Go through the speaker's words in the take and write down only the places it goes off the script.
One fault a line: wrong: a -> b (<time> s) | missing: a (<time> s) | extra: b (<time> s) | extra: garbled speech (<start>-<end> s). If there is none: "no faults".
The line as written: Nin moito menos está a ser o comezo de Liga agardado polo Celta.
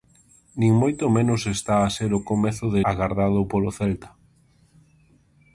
missing: Liga (2.8 s)